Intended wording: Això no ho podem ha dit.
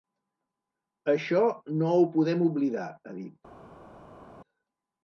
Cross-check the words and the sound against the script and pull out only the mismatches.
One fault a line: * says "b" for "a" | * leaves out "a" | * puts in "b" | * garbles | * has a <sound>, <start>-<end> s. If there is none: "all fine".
* puts in "oblidar"